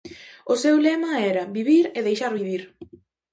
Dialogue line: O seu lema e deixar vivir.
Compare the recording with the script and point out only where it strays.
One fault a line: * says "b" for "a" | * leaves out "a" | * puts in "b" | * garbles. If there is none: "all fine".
* puts in "era vivir"